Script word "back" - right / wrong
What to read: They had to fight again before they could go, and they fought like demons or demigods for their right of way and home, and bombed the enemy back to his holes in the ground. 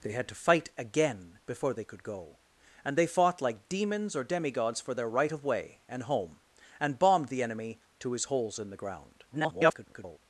wrong